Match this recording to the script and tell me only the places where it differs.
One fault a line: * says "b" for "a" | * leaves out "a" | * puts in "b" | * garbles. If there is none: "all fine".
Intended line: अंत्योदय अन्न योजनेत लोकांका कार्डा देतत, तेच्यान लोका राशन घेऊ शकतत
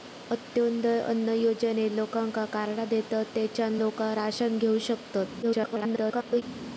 * garbles